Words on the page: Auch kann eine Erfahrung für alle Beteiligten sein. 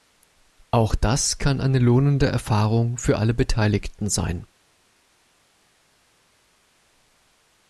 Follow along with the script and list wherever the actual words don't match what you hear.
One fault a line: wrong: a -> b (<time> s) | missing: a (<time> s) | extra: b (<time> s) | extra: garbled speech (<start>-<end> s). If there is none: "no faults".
extra: das (0.9 s)
extra: lohnende (1.8 s)